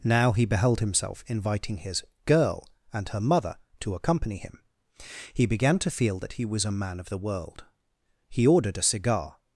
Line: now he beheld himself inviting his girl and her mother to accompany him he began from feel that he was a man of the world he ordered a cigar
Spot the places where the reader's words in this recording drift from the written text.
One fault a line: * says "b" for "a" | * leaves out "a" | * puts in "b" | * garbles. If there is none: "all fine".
* says "to" for "from"